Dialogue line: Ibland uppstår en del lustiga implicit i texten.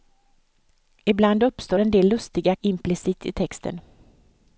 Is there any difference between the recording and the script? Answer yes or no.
no